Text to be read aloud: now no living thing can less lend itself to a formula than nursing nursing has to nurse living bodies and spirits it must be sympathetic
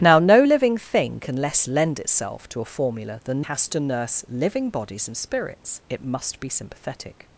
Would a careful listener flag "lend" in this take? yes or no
no